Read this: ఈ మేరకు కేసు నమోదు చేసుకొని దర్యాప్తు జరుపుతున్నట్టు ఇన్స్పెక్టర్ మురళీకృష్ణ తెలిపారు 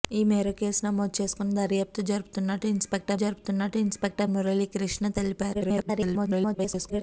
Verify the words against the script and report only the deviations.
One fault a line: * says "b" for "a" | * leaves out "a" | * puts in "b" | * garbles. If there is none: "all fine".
* puts in "జరుపుతున్నట్టు ఇన్స్పెక్టర్"
* garbles